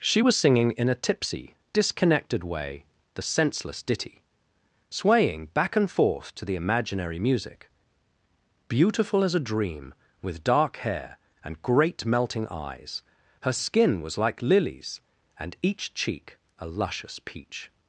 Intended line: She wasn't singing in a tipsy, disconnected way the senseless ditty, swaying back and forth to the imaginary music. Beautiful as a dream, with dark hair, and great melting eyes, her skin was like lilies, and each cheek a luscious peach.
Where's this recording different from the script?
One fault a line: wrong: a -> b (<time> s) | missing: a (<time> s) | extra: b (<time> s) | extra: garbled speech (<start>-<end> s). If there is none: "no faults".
wrong: wasn't -> was (0.2 s)